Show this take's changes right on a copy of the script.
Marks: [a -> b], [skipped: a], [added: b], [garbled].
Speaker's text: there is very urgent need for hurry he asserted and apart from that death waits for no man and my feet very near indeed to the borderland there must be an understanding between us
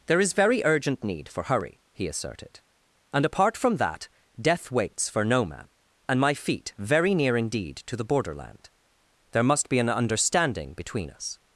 there is very urgent need for hurry he asserted and apart from that death waits for no man and my feet very near indeed to the borderland there must be an understanding between us